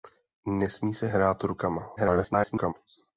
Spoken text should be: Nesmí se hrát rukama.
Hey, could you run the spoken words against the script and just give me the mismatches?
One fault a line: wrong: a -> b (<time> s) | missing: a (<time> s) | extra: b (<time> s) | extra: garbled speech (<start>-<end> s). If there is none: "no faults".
extra: garbled speech (2.0-2.7 s)